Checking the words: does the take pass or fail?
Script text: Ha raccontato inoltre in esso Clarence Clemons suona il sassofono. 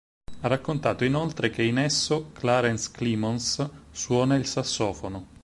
fail